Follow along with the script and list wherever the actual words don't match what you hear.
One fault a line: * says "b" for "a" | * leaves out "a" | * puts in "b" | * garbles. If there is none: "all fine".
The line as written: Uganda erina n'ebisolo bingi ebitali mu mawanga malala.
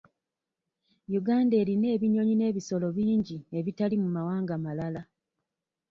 * puts in "ebinyonyi"